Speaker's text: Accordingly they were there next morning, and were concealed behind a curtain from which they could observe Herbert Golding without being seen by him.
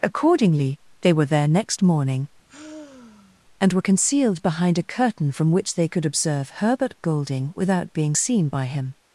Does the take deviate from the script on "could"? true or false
false